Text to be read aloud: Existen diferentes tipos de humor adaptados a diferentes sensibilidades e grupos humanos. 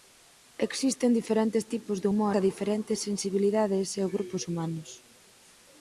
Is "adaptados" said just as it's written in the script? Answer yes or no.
no